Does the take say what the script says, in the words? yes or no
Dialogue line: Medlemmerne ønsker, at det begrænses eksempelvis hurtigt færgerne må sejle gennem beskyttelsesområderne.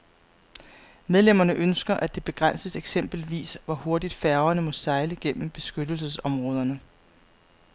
no